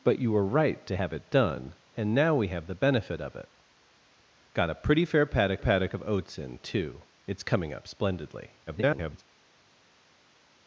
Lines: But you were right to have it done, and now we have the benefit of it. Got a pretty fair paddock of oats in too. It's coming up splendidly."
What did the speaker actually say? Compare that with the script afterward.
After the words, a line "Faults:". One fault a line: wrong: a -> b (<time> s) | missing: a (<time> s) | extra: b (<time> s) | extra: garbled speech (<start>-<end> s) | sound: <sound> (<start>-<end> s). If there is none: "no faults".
But you were right to have it done, and now we have the benefit of it. Got a pretty fair paddock paddock of oats in too. It's coming up splendidly." [garbled]
Faults:
extra: paddock (5.6 s)
extra: garbled speech (8.7-9.2 s)